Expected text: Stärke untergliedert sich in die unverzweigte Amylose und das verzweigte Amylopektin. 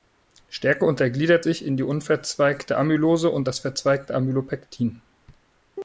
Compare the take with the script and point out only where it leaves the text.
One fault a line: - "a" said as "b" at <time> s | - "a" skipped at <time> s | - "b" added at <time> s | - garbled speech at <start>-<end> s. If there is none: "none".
none